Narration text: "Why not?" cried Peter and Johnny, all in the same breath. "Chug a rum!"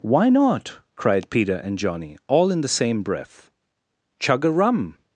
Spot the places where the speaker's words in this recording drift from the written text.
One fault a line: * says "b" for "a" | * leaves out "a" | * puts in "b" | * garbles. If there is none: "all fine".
all fine